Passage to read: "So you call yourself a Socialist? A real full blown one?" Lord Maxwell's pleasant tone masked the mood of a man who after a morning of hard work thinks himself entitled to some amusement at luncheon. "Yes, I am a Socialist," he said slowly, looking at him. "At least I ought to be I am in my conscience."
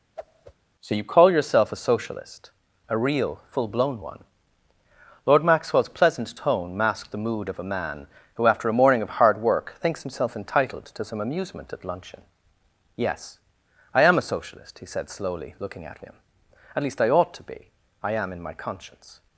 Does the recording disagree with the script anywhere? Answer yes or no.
no